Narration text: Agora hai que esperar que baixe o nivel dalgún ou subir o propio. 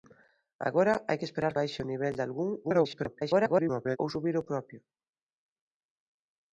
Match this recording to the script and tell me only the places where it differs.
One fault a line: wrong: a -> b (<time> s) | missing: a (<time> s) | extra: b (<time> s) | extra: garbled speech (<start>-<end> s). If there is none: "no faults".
missing: que (1.5 s)
extra: garbled speech (2.6-4.0 s)